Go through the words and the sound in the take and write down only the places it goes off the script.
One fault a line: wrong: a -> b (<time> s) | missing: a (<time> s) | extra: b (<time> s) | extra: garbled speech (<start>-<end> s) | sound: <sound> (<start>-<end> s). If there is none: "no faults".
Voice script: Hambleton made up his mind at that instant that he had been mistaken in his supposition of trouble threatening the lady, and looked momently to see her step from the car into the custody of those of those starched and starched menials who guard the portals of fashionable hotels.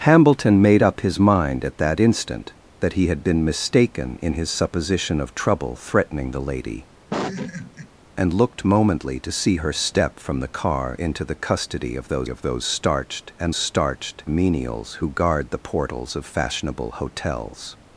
sound: laugh (7.1-7.9 s)